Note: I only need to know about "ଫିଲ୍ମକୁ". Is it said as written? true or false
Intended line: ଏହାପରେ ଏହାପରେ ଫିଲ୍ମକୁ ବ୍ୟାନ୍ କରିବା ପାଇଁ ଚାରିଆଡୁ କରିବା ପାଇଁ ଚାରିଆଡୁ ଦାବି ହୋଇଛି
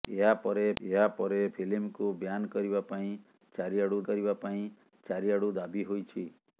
true